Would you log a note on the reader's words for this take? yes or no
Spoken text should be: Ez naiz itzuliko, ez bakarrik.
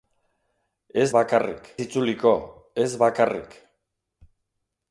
yes